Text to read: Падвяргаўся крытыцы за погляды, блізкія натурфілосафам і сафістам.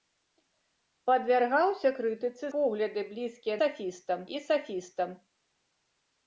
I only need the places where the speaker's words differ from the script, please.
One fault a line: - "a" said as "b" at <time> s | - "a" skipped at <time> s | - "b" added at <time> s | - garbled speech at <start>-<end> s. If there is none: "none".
- "за" skipped at 2.5 s
- "натурфілосафам" said as "сафістам" at 3.6 s